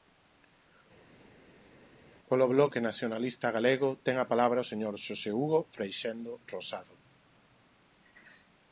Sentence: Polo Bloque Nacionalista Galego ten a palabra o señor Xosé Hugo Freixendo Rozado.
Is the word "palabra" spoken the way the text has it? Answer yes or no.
yes